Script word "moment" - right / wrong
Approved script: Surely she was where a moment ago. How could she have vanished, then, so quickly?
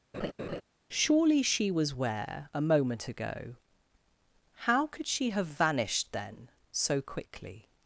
right